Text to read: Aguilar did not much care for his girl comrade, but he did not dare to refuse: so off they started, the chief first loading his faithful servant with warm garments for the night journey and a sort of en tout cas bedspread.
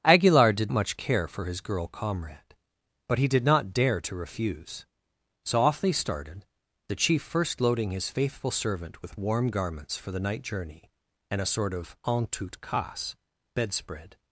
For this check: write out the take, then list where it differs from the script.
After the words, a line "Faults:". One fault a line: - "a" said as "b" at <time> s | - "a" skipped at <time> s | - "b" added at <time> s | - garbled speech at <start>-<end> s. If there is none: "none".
Aguilar did much care for his girl comrade, but he did not dare to refuse: so off they started, the chief first loading his faithful servant with warm garments for the night journey and a sort of en tout cas bedspread.
Faults:
- "not" skipped at 0.7 s